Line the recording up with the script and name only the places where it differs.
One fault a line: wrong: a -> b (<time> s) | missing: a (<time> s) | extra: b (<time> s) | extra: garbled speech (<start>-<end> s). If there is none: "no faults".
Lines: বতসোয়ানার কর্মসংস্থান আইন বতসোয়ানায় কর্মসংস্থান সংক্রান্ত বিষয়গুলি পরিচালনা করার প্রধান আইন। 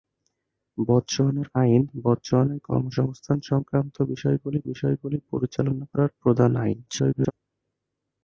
missing: কর্মসংস্থান (1.5 s)
extra: বিষয়গুলি (4.7 s)
extra: garbled speech (6.9-7.3 s)